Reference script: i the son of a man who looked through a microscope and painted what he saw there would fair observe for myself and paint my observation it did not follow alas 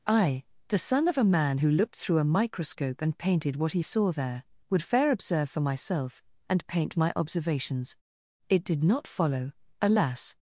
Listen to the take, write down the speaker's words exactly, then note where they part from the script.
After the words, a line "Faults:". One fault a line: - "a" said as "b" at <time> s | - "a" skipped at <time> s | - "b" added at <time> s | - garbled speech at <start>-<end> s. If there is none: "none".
i the son of a man who looked through a microscope and painted what he saw there would fair observe for myself and paint my observations it did not follow alas
Faults:
- "observation" said as "observations" at 7.2 s